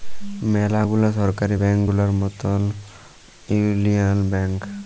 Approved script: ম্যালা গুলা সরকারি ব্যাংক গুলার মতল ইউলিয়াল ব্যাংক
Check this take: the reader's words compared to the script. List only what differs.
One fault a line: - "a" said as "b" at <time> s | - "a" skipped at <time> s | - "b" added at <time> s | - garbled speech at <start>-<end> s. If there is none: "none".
none